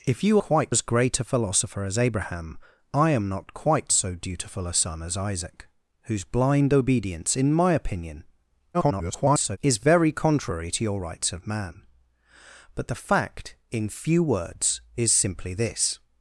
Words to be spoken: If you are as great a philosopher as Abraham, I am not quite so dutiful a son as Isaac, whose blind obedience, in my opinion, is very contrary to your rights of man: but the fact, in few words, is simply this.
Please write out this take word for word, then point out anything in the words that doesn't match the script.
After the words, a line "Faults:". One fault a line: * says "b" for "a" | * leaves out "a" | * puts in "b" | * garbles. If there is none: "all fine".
If you quite as great a philosopher as Abraham, I am not quite so dutiful a son as Isaac, whose blind obedience, in my opinion, [garbled] is very contrary to your rights of man: but the fact, in few words, is simply this.
Faults:
* says "quite" for "are"
* garbles